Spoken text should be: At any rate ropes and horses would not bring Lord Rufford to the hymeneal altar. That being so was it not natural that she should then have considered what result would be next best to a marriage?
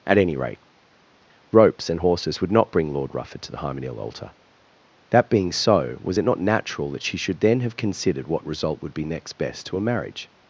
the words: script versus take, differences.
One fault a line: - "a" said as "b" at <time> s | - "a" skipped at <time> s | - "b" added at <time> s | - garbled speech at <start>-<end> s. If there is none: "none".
none